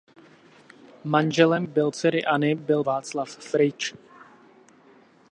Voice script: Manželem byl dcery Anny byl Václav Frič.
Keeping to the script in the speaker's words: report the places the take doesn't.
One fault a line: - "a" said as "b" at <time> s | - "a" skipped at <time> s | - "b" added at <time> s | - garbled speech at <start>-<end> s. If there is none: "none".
none